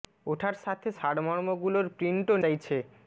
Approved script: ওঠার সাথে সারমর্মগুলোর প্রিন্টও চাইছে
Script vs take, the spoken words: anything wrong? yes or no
no